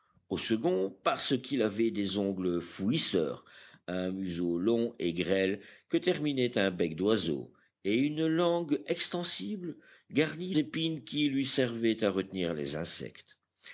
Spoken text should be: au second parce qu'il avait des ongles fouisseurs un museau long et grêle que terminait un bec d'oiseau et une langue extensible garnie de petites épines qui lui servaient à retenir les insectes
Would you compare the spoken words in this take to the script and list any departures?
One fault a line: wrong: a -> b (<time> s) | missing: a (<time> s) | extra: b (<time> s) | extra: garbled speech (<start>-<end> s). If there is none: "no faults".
missing: de petites (10.6 s)